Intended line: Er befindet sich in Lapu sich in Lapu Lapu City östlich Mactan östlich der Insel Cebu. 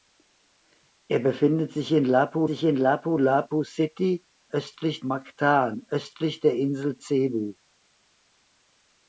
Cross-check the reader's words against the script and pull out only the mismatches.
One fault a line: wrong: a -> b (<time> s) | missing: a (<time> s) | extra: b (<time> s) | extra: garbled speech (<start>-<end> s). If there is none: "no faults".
no faults